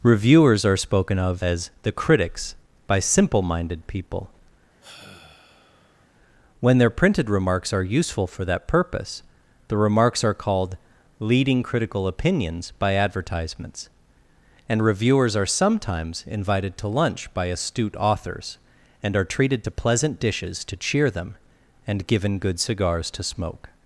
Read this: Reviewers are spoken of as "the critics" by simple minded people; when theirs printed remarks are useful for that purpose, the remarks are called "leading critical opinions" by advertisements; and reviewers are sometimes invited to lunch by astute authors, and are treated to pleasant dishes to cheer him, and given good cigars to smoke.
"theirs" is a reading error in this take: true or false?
true